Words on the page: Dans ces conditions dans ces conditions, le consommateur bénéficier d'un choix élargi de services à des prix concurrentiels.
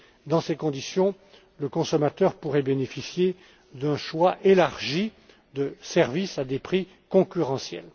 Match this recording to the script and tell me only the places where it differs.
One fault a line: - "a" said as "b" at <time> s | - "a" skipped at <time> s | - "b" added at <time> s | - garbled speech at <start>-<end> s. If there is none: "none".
- "dans ces conditions" skipped at 1.1 s
- "pourrait" added at 2.4 s